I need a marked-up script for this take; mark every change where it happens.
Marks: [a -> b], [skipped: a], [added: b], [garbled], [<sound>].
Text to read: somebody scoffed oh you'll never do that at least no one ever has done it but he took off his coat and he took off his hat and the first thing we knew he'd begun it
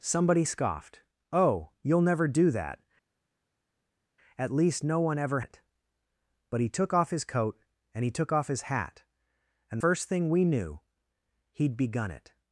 somebody scoffed oh you'll never do that at least no one ever [skipped: has done] it but he took off his coat and he took off his hat and [skipped: the] first thing we knew he'd begun it